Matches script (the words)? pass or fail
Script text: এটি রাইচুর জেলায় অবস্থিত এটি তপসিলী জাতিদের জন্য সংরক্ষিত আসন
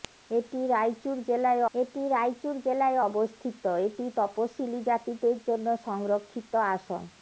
fail